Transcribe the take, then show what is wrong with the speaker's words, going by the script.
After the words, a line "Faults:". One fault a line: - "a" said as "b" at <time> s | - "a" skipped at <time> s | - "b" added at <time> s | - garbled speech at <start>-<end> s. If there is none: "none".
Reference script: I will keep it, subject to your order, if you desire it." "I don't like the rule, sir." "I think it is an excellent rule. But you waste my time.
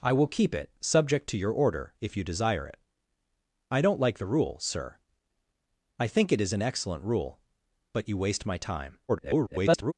I will keep it, subject to your order, if you desire it." "I don't like the rule, sir." "I think it is an excellent rule. But you waste my time. [garbled]
Faults:
- garbled speech at 9.1-9.9 s